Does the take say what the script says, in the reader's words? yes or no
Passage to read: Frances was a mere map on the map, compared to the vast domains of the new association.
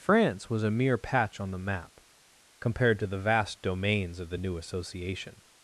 no